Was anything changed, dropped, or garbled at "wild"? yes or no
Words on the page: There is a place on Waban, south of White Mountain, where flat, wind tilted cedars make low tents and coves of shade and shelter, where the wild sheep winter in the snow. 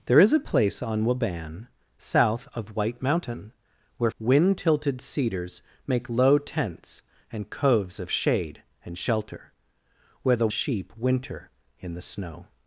yes